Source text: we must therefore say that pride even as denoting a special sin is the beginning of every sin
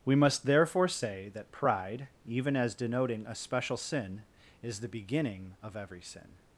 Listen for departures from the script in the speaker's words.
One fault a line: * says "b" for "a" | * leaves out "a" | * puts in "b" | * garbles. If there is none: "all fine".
all fine